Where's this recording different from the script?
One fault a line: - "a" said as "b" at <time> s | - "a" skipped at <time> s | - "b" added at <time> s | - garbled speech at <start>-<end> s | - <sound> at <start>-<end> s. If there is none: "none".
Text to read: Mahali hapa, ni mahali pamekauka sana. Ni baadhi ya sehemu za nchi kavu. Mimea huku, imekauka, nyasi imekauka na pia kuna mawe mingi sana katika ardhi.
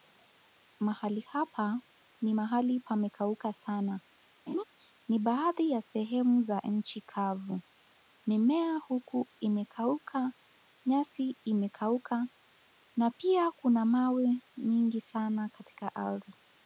- laugh at 4.5-4.6 s